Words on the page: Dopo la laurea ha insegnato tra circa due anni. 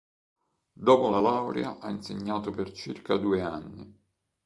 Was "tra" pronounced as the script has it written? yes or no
no